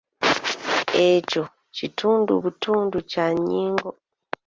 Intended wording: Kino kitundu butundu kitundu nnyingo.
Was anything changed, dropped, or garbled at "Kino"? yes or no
yes